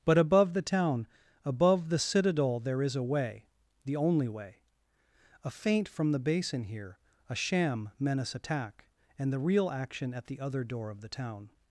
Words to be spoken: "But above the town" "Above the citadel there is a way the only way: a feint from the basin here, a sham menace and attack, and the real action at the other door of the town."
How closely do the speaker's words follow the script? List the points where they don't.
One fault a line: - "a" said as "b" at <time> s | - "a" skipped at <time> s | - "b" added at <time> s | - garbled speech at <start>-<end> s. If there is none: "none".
- "and" skipped at 8.3 s